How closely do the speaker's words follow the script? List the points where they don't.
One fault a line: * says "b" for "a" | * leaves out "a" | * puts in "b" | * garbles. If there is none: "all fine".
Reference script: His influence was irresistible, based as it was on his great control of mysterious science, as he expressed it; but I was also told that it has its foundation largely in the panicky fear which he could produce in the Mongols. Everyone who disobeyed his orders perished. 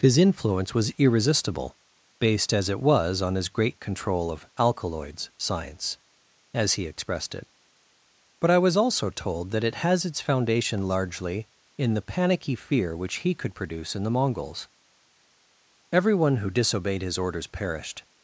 * says "alkaloids" for "mysterious"